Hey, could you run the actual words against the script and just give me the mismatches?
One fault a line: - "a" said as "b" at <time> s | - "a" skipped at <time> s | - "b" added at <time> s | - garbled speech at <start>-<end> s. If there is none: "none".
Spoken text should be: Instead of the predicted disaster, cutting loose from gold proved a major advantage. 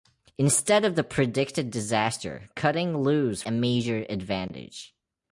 - "from gold proved" skipped at 3.4 s